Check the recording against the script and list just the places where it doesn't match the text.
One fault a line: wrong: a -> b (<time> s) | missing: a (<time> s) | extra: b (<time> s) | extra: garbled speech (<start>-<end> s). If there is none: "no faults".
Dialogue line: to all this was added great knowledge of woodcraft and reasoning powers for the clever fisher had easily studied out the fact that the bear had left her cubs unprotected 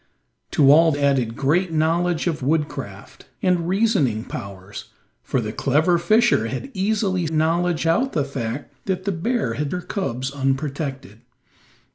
missing: this was (0.9 s)
wrong: studied -> knowledge (7.3 s)
missing: left (9.7 s)